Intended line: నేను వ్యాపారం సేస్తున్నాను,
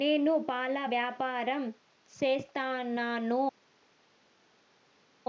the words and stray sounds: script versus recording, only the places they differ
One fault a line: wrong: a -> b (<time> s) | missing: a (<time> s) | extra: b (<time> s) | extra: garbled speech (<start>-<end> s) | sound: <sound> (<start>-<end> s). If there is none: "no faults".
extra: పాల (0.5 s)